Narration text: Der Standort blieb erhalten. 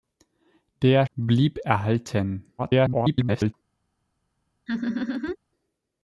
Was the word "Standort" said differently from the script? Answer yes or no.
yes